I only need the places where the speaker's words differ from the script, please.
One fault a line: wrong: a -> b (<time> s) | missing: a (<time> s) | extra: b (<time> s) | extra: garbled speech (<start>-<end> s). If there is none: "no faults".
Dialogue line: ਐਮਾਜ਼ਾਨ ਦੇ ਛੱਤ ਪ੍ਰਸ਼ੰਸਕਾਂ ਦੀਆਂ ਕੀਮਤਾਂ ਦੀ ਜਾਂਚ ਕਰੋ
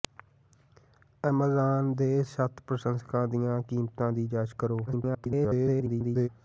extra: garbled speech (4.9-6.3 s)